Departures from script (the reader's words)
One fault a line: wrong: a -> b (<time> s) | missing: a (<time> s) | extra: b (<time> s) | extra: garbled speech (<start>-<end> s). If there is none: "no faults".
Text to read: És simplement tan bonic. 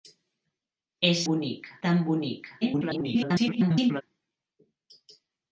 wrong: simplement -> bonic (1.3 s)
extra: garbled speech (2.6-4.0 s)